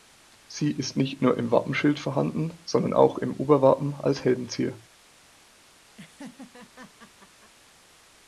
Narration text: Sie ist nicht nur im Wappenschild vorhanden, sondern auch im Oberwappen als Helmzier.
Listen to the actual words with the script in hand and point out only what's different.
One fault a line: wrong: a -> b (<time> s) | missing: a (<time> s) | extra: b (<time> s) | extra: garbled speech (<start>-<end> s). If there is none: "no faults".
no faults